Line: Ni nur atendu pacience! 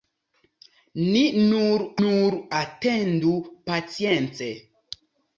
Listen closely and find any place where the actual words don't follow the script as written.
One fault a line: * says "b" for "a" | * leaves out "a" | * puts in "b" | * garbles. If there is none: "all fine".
* puts in "nur"